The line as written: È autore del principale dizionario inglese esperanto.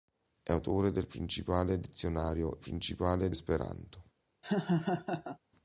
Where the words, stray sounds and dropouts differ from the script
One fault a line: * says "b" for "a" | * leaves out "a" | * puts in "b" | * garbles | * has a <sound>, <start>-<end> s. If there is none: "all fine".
* says "principale" for "inglese"
* has a laugh, 4.4-5.4 s